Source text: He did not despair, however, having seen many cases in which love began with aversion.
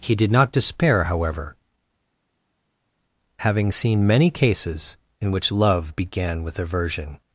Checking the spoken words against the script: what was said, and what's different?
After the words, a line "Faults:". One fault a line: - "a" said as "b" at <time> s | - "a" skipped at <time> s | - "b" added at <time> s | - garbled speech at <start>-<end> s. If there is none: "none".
He did not despair, however, having seen many cases in which love began with aversion.
Faults:
none